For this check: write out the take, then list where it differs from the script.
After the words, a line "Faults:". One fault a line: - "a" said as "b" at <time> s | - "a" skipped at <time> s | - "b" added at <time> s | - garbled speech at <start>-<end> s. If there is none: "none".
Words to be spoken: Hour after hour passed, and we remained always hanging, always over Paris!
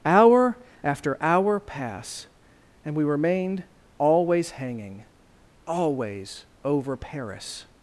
Hour after hour pass, and we remained always hanging, always over Paris!
Faults:
- "passed" said as "pass" at 1.6 s